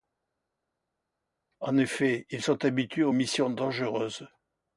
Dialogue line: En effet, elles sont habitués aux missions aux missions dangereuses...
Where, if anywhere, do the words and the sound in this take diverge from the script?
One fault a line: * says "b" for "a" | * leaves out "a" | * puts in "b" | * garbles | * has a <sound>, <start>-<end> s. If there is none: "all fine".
* says "ils" for "elles"
* leaves out "aux missions"